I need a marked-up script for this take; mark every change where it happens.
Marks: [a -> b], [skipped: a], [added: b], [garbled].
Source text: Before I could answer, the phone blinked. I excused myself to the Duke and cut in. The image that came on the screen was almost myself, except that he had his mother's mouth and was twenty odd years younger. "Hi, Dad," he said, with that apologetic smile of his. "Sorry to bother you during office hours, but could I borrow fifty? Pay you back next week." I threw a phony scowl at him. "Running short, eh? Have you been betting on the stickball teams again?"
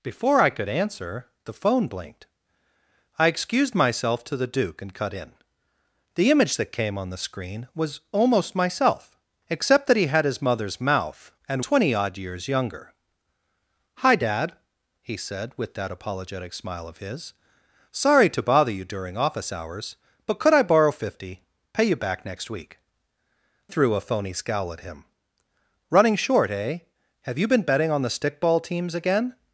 Before I could answer, the phone blinked. I excused myself to the Duke and cut in. The image that came on the screen was almost myself, except that he had his mother's mouth and [skipped: was] twenty odd years younger. "Hi, Dad," he said, with that apologetic smile of his. "Sorry to bother you during office hours, but could I borrow fifty? Pay you back next week." [skipped: I] threw a phony scowl at him. "Running short, eh? Have you been betting on the stickball teams again?"